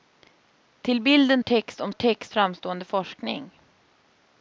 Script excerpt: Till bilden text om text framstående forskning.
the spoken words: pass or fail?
pass